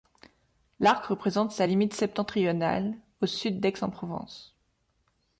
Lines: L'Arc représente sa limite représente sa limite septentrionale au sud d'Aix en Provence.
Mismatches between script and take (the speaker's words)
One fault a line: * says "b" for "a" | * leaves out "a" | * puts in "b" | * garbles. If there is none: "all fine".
* leaves out "représente sa limite"